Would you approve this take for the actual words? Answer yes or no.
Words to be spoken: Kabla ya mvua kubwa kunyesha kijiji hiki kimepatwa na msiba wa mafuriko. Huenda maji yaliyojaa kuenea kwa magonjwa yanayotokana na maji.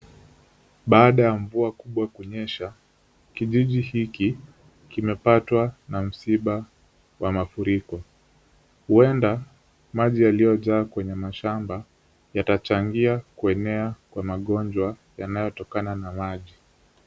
no